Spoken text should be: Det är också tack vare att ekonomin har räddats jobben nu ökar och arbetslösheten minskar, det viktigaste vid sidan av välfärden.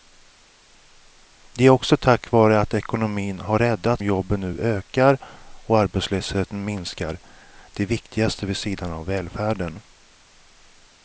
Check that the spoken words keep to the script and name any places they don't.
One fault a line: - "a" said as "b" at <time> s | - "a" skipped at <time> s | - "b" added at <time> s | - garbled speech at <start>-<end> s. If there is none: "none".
none